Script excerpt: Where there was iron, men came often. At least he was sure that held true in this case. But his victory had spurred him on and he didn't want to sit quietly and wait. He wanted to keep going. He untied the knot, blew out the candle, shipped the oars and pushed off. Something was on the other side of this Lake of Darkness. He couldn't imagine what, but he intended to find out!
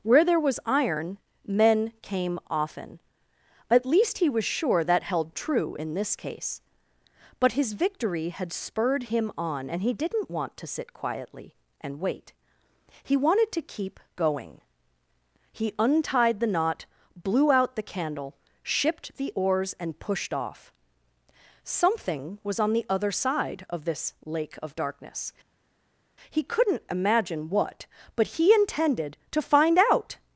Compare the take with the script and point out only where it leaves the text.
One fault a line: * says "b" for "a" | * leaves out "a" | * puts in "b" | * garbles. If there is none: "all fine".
all fine